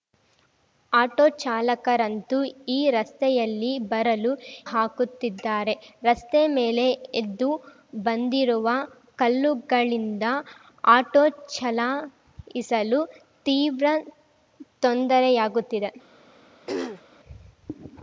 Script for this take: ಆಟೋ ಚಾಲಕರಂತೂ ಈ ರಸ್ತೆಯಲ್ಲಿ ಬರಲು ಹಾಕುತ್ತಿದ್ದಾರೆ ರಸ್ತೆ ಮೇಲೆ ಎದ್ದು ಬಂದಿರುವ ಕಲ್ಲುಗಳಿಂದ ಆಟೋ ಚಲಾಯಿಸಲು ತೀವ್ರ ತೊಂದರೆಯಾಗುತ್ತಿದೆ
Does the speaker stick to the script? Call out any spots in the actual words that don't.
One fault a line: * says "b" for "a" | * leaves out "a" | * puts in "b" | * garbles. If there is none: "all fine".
all fine